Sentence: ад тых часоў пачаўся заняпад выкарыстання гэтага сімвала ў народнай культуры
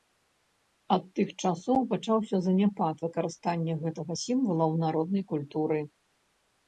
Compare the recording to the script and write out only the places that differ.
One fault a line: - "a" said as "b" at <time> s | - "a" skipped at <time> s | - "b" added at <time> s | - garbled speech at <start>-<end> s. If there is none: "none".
none